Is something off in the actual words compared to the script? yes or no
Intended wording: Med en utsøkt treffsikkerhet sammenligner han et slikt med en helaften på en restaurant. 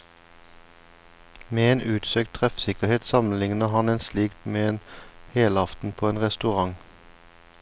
no